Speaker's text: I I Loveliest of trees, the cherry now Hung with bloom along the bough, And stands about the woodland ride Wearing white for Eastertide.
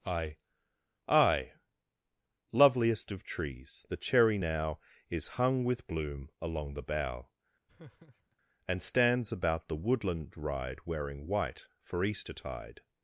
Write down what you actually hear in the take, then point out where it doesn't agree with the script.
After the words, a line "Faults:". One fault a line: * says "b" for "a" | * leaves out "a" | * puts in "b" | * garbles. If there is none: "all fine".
I I Loveliest of trees, the cherry now Is hung with bloom along the bough, And stands about the woodland ride Wearing white for Eastertide.
Faults:
* puts in "Is"